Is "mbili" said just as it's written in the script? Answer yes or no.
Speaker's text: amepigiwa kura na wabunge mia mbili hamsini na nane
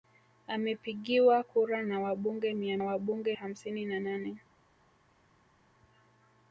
no